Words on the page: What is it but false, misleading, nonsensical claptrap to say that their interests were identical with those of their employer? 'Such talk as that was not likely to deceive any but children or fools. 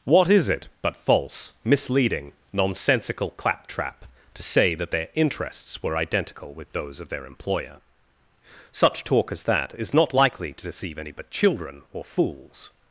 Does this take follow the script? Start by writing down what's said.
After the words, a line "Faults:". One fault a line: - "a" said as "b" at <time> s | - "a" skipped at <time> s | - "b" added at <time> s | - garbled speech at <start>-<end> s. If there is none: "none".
What is it but false, misleading, nonsensical claptrap to say that their interests were identical with those of their employer? 'Such talk as that is not likely to deceive any but children or fools.
Faults:
- "was" said as "is" at 9.8 s